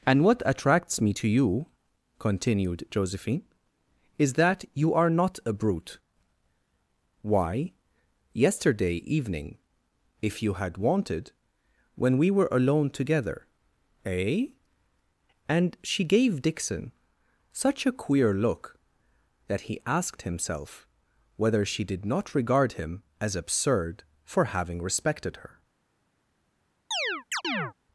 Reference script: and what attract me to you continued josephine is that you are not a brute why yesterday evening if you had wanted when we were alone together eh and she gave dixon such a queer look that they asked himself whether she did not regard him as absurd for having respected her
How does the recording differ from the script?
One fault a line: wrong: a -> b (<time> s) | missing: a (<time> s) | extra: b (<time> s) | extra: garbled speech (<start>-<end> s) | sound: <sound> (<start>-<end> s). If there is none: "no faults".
wrong: attract -> attracts (0.5 s)
wrong: they -> he (19.6 s)
sound: chirp (26.9-27.7 s)